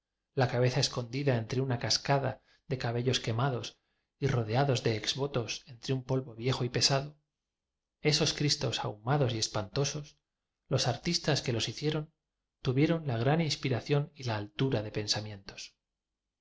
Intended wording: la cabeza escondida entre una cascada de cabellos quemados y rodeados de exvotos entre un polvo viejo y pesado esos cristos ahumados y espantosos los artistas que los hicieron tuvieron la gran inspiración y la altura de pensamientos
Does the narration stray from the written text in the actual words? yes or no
no